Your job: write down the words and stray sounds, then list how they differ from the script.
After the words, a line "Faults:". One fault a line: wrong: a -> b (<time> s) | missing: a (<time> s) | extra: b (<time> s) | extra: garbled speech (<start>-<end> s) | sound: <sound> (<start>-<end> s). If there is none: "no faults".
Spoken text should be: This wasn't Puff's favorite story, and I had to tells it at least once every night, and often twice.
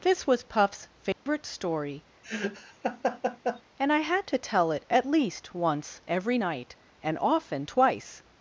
This was Puff's favorite story, and I had to tell it at least once every night, and often twice.
Faults:
wrong: wasn't -> was (0.2 s)
sound: dropout (1.1-1.3 s)
sound: laugh (2.2-3.6 s)
wrong: tells -> tell (4.4 s)